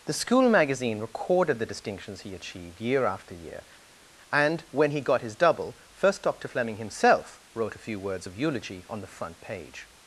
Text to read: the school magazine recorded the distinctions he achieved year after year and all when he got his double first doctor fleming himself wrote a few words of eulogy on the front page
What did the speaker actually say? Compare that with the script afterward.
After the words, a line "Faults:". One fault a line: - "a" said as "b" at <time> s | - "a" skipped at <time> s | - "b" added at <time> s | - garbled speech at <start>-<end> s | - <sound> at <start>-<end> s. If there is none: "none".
the school magazine recorded the distinctions he achieved year after year and when he got his double first doctor fleming himself wrote a few words of eulogy on the front page
Faults:
- "all" skipped at 4.6 s